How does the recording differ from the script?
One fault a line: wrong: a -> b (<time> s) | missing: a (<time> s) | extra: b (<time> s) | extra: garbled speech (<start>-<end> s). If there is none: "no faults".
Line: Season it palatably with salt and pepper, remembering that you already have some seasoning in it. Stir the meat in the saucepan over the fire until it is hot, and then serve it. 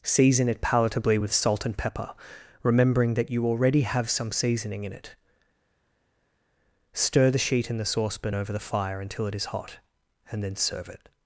wrong: meat -> sheet (7.4 s)